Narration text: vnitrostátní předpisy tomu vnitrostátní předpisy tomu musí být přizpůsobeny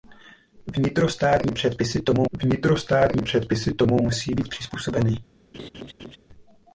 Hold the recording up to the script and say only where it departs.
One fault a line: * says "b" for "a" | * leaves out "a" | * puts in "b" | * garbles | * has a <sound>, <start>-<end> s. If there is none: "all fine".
* has a laugh, 5.5-6.2 s